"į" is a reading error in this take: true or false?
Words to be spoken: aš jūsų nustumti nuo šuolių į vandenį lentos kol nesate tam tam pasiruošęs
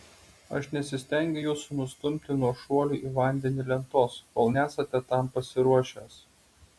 false